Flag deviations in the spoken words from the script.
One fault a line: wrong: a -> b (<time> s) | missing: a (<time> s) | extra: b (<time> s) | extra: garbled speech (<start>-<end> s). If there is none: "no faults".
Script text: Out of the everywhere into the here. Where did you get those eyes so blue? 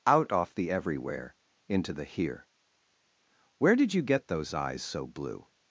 wrong: of -> off (0.3 s)